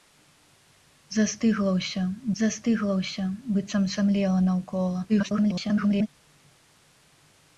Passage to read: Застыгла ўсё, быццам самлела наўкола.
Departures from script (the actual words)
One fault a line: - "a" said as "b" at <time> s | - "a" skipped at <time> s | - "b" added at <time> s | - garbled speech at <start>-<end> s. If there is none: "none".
- "застыгла ўсё" added at 2.4 s
- garbled speech at 5.1-6.1 s